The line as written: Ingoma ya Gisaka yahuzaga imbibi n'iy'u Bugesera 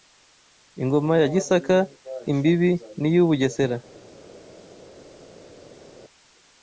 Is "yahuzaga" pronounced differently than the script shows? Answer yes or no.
yes